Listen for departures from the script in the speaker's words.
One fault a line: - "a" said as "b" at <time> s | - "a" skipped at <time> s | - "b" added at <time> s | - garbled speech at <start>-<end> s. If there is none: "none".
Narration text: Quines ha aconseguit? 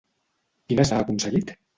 none